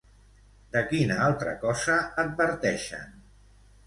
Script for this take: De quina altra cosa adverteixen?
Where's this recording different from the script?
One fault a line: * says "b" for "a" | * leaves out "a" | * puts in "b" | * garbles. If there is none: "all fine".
all fine